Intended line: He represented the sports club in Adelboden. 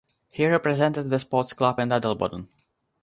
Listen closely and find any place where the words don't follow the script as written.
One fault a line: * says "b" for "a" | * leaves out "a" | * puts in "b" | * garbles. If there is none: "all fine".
all fine